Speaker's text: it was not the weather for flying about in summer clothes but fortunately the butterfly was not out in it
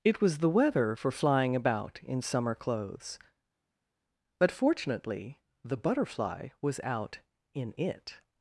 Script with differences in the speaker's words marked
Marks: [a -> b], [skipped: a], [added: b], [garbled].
it was [skipped: not] the weather for flying about in summer clothes but fortunately the butterfly was [skipped: not] out in it